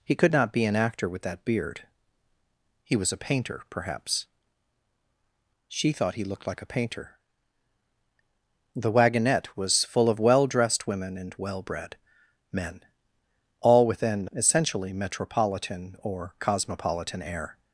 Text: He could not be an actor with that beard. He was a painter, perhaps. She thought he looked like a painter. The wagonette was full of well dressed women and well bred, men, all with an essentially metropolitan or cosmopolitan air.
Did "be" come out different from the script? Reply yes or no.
no